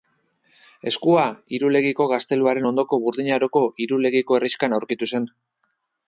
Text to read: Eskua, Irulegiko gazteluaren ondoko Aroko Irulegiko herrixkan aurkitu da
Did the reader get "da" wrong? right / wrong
wrong